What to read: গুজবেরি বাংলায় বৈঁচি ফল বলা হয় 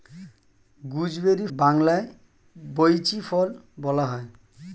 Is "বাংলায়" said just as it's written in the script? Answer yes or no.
yes